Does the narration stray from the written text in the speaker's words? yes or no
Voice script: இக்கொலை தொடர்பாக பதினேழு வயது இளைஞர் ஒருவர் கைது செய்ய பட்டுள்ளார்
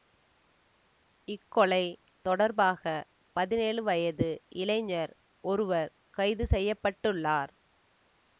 no